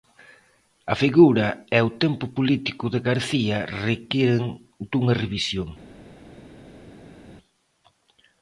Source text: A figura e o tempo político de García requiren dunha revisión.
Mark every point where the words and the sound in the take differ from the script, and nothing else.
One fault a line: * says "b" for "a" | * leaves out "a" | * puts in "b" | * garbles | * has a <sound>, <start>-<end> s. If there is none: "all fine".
all fine